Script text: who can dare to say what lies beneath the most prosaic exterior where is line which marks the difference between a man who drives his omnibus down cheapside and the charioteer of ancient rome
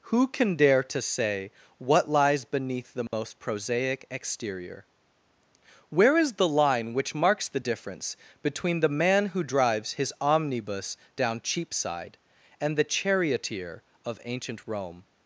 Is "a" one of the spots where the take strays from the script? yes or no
yes